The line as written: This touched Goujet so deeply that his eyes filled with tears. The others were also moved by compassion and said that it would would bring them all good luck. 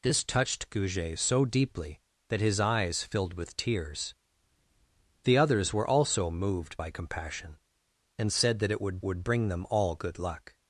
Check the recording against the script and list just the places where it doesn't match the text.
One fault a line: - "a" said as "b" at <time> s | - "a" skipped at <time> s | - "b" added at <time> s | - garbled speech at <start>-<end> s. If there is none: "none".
none